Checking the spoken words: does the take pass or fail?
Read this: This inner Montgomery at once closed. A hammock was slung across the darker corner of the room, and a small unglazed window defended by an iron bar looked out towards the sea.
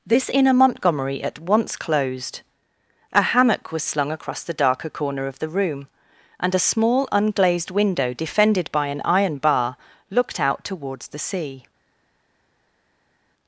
pass